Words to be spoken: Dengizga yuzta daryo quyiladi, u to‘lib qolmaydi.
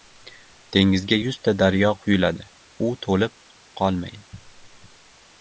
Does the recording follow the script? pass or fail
pass